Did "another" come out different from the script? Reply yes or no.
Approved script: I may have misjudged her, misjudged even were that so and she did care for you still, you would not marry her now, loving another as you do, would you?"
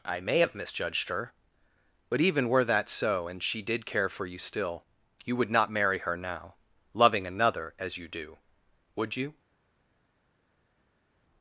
no